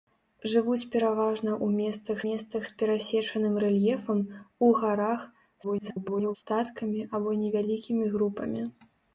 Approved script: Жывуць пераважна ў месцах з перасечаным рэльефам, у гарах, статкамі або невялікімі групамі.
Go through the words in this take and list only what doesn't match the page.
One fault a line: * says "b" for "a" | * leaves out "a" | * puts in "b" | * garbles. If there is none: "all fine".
* puts in "месцах"
* garbles